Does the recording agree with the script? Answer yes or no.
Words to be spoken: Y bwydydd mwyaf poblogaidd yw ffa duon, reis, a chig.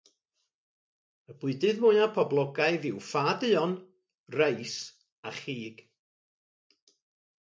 yes